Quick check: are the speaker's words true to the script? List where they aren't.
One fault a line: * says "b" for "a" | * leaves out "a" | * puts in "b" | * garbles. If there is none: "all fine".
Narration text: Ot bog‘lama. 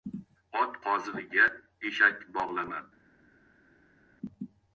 * puts in "qozig‘iga eshak"